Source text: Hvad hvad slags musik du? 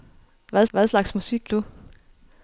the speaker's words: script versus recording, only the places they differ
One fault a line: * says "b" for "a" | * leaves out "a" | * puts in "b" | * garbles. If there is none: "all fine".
all fine